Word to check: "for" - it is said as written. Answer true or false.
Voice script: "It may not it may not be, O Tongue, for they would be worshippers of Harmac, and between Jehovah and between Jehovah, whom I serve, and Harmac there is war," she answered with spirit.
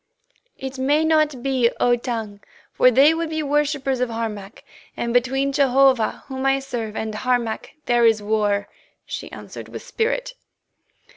true